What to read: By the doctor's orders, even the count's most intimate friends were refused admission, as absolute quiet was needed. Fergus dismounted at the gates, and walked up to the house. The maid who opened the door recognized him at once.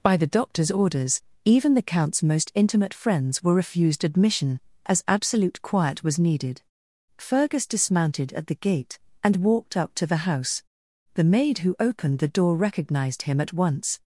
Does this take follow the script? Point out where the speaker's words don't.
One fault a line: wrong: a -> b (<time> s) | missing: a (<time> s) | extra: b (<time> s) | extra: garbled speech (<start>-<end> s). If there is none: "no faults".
wrong: gates -> gate (8.6 s)